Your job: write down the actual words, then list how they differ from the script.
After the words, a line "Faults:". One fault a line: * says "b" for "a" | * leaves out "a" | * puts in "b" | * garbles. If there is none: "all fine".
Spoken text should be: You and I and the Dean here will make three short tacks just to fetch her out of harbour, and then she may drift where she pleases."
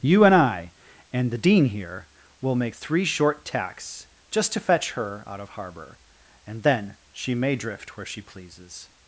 You and I and the Dean here will make three short tacks just to fetch her out of harbour, and then she may drift where she pleases."
Faults:
all fine